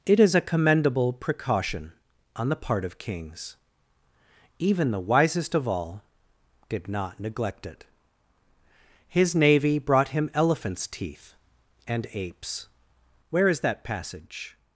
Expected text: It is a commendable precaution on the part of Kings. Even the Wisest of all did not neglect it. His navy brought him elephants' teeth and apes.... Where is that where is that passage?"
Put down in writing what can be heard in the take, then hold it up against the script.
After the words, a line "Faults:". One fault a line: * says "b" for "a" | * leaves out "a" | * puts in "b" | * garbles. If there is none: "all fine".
It is a commendable precaution on the part of Kings. Even the Wisest of all did not neglect it. His navy brought him elephants' teeth and apes.... Where is that passage?"
Faults:
* leaves out "where is that"